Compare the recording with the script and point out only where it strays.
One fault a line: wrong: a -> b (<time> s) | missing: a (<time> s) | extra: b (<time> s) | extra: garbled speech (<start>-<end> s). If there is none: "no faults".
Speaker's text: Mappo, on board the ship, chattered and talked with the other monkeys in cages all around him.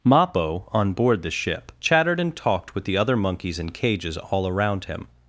no faults